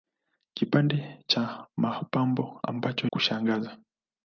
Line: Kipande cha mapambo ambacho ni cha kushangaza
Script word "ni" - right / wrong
wrong